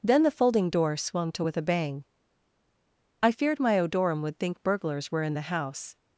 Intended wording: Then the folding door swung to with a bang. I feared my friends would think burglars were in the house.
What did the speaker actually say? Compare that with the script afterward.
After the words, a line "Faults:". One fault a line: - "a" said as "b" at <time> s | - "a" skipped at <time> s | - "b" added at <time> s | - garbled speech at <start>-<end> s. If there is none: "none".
Then the folding door swung to with a bang. I feared my odorum would think burglars were in the house.
Faults:
- "friends" said as "odorum" at 3.8 s